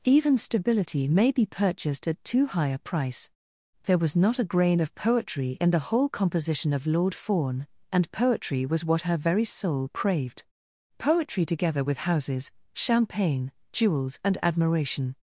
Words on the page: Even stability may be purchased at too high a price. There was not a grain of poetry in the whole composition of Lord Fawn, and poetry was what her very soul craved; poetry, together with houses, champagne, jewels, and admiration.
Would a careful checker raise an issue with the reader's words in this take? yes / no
no